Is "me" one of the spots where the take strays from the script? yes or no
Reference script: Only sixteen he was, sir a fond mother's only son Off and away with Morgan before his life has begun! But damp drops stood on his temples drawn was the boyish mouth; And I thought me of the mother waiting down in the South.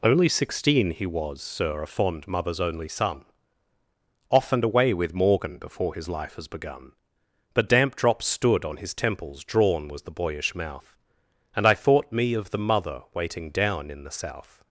no